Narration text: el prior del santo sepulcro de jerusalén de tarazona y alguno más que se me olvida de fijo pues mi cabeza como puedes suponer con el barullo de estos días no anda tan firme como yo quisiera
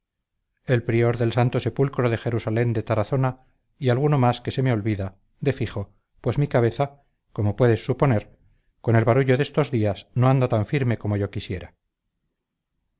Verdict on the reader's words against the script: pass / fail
pass